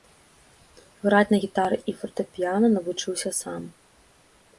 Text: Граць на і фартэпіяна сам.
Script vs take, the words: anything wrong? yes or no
yes